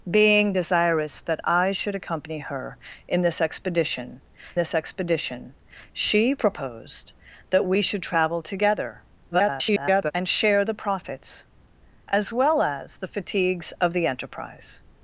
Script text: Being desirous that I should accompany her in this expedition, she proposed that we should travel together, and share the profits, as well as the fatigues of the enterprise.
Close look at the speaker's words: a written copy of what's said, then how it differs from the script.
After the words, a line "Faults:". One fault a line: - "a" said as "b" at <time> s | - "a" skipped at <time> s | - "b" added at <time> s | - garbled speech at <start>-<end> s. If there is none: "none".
Being desirous that I should accompany her in this expedition this expedition, she proposed that we should travel together, [garbled] and share the profits, as well as the fatigues of the enterprise.
Faults:
- "this expedition" added at 4.5 s
- garbled speech at 9.3-10.1 s